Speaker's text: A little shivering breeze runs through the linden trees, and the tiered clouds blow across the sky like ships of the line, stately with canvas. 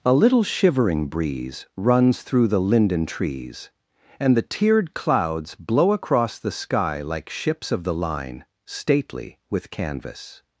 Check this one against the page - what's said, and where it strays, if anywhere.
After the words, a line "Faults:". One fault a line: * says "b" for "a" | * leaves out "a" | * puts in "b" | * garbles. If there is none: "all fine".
A little shivering breeze runs through the linden trees, and the tiered clouds blow across the sky like ships of the line, stately with canvas.
Faults:
all fine